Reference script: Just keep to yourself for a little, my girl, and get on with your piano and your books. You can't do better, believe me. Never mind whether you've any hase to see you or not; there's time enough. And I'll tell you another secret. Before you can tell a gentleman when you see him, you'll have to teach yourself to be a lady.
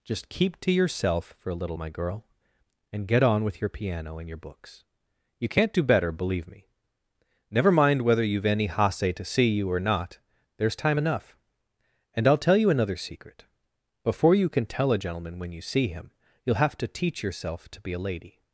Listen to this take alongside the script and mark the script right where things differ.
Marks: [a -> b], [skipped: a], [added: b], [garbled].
Just keep to yourself for a little, my girl, and get on with your piano and your books. You can't do better, believe me. Never mind whether you've any hase to see you or not; there's time enough. And I'll tell you another secret. Before you can tell a gentleman when you see him, you'll have to teach yourself to be a lady.